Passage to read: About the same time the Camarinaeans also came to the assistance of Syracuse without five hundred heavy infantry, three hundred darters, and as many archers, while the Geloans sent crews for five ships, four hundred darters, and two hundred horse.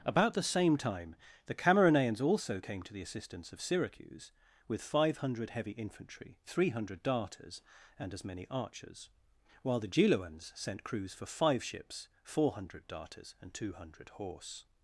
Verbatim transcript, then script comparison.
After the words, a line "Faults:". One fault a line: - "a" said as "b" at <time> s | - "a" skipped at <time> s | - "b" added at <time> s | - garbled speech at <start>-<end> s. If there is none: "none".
About the same time the Camarinaeans also came to the assistance of Syracuse with five hundred heavy infantry, three hundred darters, and as many archers, while the Geloans sent crews for five ships, four hundred darters, and two hundred horse.
Faults:
- "without" said as "with" at 4.7 s